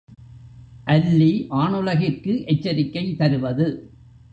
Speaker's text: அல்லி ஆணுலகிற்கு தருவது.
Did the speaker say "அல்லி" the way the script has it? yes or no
yes